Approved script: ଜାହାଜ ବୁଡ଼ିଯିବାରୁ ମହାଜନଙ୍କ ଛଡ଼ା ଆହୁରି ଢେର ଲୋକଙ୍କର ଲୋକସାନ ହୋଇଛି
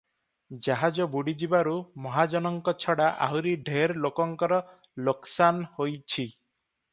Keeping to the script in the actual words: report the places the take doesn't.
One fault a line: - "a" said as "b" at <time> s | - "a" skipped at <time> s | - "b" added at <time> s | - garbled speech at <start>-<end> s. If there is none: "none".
none